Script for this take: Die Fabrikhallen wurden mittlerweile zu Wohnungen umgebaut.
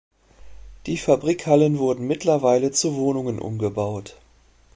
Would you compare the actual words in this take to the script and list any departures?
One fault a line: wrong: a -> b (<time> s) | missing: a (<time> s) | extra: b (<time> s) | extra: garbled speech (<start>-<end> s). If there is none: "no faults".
no faults